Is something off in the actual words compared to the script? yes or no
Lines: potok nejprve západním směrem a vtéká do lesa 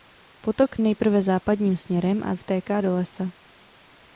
no